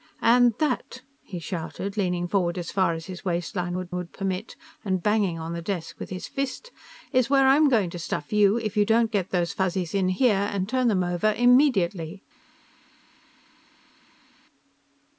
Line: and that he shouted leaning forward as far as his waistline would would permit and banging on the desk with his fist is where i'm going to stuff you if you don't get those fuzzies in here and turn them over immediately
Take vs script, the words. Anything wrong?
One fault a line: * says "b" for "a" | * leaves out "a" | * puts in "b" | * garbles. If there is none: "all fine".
all fine